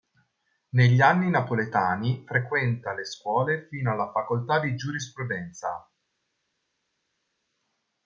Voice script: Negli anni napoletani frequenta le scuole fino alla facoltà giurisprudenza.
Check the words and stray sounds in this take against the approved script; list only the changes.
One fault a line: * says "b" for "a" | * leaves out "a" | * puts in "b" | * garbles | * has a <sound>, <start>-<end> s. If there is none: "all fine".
* puts in "di"